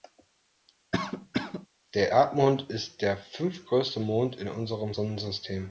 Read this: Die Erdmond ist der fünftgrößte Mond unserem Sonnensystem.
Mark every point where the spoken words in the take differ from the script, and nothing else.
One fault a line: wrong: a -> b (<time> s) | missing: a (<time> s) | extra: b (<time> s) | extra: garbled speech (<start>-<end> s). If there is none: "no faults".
wrong: Die -> Der (1.9 s)
extra: in (4.4 s)